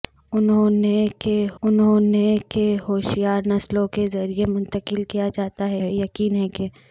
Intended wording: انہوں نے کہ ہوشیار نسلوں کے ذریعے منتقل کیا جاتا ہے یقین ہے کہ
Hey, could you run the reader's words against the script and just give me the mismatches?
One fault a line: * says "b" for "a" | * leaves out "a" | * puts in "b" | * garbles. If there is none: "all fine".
* puts in "انہوں نے کہ"
* puts in "ہے"